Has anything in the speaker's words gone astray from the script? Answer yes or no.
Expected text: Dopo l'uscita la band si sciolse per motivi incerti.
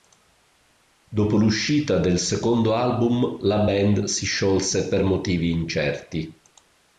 yes